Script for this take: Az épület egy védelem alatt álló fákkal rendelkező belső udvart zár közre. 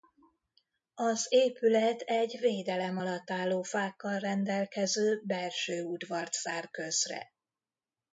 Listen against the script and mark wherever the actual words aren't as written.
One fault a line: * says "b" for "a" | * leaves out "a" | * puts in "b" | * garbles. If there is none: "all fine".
all fine